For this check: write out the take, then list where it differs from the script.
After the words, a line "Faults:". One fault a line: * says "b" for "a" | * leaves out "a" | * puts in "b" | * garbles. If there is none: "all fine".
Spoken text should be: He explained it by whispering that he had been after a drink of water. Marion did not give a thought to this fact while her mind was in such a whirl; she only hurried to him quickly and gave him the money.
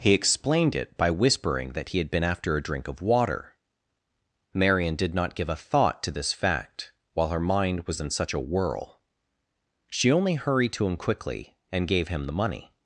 He explained it by whispering that he had been after a drink of water. Marion did not give a thought to this fact while her mind was in such a whirl; she only hurried to him quickly and gave him the money.
Faults:
all fine